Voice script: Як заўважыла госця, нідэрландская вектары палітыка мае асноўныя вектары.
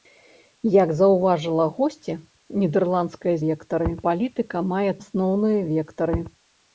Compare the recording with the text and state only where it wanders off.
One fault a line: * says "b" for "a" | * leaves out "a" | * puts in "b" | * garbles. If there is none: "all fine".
all fine